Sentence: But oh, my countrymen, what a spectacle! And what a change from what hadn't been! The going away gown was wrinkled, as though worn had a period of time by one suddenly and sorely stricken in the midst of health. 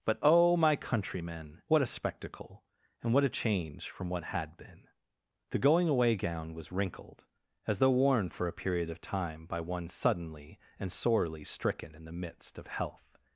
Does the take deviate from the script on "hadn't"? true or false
true